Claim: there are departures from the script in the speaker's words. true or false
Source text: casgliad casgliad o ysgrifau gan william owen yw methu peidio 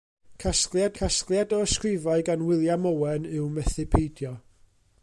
false